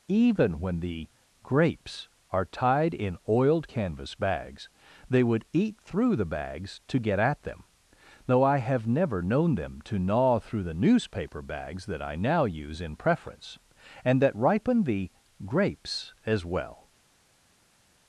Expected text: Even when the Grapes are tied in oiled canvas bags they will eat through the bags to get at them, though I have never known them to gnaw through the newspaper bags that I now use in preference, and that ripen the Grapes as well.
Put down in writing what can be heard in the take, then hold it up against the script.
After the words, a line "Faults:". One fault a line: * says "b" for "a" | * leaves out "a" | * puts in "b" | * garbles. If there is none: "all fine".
Even when the Grapes are tied in oiled canvas bags they would eat through the bags to get at them, though I have never known them to gnaw through the newspaper bags that I now use in preference, and that ripen the Grapes as well.
Faults:
* says "would" for "will"